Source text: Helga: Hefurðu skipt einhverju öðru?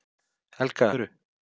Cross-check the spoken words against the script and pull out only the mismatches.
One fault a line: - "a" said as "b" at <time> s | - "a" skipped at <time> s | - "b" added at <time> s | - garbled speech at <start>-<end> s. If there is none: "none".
- "Hefurðu skipt einhverju" skipped at 0.9 s